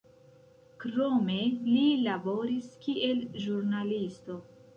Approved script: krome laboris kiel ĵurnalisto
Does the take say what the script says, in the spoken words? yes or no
no